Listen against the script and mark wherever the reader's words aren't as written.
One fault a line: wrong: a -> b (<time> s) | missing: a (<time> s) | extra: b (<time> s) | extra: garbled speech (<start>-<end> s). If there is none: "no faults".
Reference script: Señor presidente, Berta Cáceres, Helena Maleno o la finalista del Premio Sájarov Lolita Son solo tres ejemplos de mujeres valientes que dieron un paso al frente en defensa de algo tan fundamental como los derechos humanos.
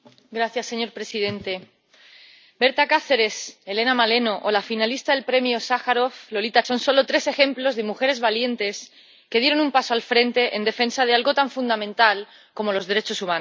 no faults